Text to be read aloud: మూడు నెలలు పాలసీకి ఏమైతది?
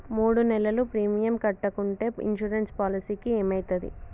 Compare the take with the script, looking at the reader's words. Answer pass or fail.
fail